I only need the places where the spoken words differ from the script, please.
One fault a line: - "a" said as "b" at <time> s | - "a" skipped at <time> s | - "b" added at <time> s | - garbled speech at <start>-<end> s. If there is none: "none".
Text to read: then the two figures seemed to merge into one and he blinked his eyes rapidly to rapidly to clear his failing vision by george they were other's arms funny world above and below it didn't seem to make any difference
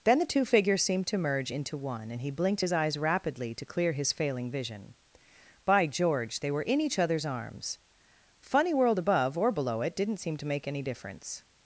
- "rapidly to" skipped at 3.6 s
- "in each" added at 6.6 s
- "and" said as "or" at 9.4 s